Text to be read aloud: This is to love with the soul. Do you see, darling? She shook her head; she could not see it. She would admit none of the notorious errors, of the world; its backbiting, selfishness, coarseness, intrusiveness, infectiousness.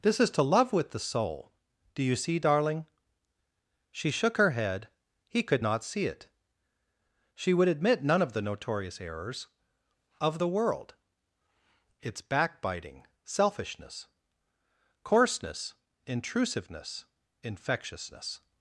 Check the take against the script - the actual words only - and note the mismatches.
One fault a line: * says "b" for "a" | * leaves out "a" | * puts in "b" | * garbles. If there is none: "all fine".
* says "he" for "she"